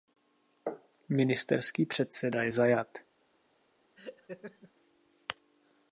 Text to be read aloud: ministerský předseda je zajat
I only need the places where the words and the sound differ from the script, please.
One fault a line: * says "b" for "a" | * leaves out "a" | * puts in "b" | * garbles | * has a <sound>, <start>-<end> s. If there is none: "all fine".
* has a laugh, 4.0-4.7 s